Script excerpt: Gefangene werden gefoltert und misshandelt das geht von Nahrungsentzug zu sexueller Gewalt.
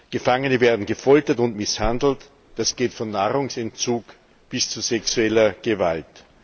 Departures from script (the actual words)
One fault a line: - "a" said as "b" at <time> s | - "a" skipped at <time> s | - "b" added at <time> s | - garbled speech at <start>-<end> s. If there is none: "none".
- "bis" added at 4.5 s